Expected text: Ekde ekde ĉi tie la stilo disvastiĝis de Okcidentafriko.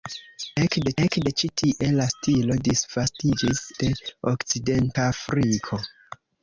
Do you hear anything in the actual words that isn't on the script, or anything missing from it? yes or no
no